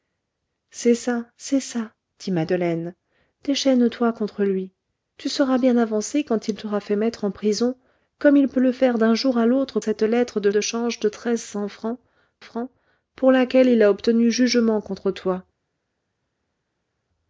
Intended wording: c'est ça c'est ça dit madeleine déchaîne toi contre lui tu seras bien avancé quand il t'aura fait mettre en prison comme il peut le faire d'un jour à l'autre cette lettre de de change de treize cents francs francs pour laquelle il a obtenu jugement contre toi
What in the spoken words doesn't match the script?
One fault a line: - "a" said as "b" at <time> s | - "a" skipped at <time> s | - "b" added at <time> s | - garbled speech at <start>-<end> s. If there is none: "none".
none